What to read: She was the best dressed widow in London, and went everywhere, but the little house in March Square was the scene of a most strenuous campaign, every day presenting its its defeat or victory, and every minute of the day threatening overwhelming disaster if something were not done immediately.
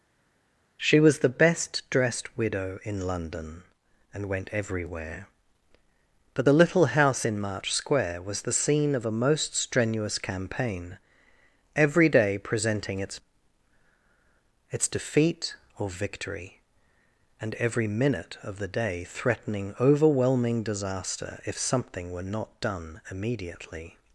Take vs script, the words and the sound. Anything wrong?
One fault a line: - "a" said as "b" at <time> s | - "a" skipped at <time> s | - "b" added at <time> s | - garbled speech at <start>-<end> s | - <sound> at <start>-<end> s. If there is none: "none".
none